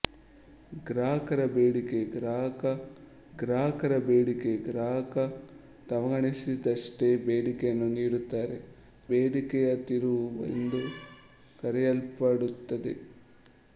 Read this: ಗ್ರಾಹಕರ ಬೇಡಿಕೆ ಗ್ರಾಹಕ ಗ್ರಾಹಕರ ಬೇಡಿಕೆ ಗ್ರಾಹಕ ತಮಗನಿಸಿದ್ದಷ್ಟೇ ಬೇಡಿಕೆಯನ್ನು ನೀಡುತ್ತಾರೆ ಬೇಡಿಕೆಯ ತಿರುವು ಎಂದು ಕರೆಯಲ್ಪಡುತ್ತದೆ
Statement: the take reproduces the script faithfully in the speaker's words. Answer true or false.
true